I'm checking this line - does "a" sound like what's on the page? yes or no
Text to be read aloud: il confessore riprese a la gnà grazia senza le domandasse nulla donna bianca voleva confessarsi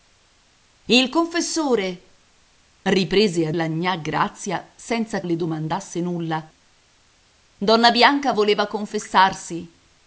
yes